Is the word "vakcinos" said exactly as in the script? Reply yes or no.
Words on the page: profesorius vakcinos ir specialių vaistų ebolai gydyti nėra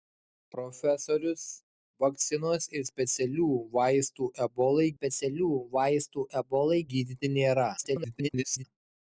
yes